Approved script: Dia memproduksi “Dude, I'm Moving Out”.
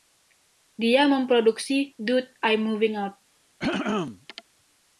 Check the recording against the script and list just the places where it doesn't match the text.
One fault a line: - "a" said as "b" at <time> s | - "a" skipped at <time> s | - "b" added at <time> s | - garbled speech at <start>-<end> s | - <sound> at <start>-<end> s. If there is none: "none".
- throat clearing at 3.6-4.4 s